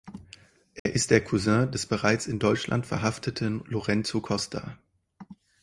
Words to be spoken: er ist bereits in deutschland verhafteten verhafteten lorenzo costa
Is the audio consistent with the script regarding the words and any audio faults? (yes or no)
no